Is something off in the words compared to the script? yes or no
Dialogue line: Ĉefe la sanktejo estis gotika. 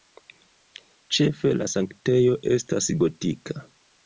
yes